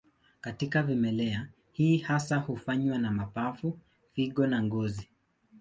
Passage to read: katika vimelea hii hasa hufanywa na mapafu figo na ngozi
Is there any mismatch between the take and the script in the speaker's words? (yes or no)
no